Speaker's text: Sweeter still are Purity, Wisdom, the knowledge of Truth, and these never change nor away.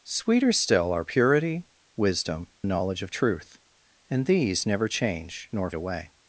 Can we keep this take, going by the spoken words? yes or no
yes